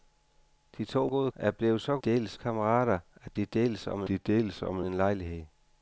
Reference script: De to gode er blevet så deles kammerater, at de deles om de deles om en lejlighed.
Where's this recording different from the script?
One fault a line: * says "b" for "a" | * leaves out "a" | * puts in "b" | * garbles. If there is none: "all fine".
all fine